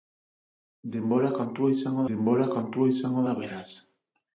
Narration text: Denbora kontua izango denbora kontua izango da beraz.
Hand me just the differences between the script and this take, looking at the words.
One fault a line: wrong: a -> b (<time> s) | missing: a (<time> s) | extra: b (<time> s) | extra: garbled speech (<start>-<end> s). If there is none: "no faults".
no faults